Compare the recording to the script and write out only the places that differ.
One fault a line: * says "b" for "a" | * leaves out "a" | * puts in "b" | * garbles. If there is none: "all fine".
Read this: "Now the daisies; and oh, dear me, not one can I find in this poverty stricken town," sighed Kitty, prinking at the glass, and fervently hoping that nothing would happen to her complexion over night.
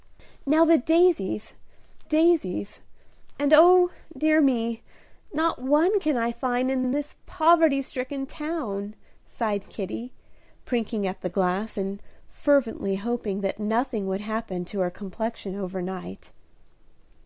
* puts in "daisies"
* puts in "in"